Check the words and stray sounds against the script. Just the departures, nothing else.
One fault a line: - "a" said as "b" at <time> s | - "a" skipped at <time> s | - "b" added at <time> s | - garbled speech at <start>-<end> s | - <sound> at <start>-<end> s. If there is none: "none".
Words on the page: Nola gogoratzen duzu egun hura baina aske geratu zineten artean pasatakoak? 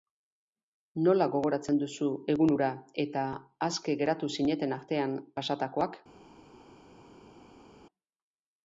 - "baina" said as "eta" at 3.0 s